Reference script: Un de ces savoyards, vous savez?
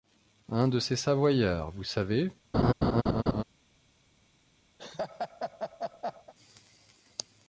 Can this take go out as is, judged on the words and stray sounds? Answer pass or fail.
fail